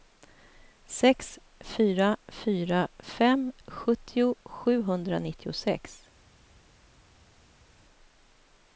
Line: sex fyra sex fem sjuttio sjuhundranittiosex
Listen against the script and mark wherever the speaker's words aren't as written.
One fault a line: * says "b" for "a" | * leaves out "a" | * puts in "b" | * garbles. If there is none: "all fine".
* says "fyra" for "sex"